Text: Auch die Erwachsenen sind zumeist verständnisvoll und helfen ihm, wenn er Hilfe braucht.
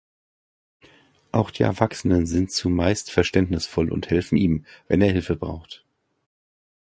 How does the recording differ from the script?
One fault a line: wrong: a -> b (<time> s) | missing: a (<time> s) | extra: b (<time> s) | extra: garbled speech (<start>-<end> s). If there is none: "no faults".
no faults